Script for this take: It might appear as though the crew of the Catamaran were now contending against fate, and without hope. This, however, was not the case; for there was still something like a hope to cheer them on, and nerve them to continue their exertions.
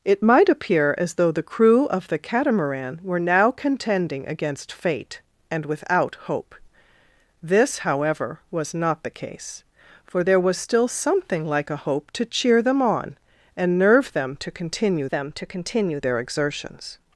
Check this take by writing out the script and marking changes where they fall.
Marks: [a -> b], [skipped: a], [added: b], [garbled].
It might appear as though the crew of the Catamaran were now contending against fate, and without hope. This, however, was not the case; for there was still something like a hope to cheer them on, and nerve them to continue [added: them to continue] their exertions.